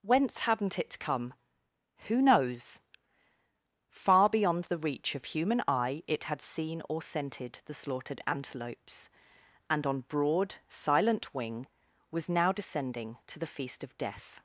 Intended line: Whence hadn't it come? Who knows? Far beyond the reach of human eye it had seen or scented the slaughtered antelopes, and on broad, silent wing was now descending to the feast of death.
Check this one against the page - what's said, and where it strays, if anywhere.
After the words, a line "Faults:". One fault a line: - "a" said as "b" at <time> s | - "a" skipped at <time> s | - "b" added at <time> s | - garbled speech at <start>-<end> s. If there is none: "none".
Whence hadn't it come? Who knows? Far beyond the reach of human eye it had seen or scented the slaughtered antelopes, and on broad, silent wing was now descending to the feast of death.
Faults:
none